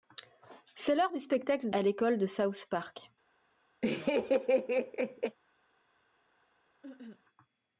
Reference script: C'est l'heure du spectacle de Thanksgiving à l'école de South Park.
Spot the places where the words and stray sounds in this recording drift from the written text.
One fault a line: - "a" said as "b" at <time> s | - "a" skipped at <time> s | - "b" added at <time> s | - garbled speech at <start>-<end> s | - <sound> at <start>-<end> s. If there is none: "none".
- "de Thanksgiving" skipped at 1.7 s
- laugh at 3.8-5.4 s
- cough at 6.8-7.2 s